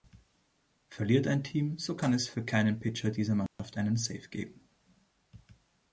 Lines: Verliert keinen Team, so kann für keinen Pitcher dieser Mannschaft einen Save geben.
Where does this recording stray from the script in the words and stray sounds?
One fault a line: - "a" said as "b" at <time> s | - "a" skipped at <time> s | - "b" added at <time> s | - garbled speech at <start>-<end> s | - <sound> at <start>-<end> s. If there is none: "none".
- "keinen" said as "ein" at 1.3 s
- "es" added at 2.1 s
- dropout at 3.5-3.6 s